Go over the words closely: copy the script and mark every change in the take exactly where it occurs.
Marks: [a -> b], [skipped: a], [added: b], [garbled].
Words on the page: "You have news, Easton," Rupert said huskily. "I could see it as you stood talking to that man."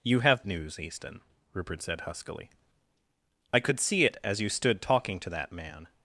"You have news, Easton," Rupert said huskily. "I could see it as you stood talking to that man."